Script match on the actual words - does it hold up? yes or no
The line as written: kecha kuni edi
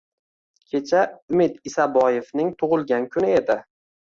no